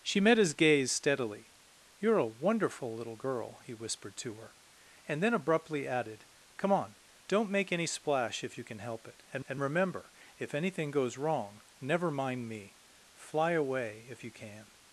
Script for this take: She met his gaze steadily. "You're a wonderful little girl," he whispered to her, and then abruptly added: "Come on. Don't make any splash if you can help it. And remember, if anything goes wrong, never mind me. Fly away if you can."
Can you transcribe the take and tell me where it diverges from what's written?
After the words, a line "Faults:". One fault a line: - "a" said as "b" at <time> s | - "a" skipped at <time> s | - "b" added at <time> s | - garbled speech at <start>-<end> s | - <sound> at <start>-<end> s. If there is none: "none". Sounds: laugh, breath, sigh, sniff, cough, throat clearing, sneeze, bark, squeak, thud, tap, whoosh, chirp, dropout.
She met his gaze steadily. "You're a wonderful little girl," he whispered to her, and then abruptly added: "Come on. Don't make any splash if you can help it. And and remember, if anything goes wrong, never mind me. Fly away if you can."
Faults:
- "and" added at 9.5 s